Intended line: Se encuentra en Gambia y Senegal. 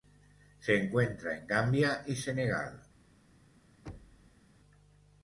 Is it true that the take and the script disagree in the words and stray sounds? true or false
true